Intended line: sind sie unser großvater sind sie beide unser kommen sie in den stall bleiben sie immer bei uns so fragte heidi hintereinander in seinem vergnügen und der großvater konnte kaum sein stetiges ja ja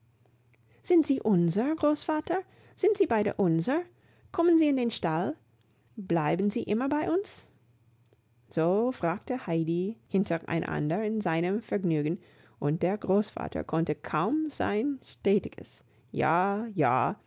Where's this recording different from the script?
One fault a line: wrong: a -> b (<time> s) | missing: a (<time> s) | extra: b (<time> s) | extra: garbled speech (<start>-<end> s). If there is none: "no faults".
no faults